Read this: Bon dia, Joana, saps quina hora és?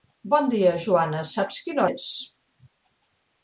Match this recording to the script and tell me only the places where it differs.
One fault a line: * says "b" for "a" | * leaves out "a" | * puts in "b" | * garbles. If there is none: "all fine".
* leaves out "hora"